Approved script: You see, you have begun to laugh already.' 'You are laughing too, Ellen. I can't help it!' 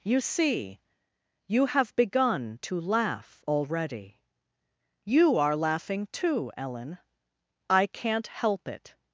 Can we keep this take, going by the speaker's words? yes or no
yes